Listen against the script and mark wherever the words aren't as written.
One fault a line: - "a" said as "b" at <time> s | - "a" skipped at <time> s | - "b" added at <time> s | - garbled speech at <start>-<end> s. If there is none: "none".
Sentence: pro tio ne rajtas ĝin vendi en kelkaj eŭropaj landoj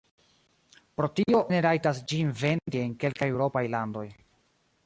none